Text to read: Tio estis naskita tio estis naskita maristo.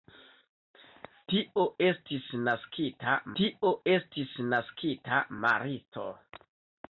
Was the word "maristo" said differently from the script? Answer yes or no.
no